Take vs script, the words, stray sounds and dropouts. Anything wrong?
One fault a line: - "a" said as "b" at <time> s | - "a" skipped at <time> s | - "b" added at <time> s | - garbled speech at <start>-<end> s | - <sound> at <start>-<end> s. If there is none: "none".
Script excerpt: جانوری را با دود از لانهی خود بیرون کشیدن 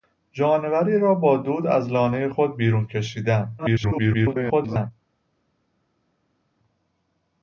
- garbled speech at 3.6-4.9 s